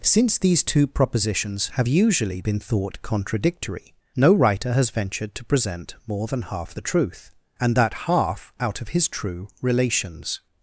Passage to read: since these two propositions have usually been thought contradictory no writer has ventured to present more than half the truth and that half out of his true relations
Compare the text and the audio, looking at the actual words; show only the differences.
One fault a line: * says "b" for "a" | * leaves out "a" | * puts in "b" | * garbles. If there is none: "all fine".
all fine